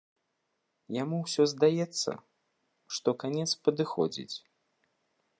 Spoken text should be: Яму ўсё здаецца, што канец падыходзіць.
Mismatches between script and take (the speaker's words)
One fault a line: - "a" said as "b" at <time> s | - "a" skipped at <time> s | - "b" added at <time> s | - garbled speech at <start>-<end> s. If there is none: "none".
none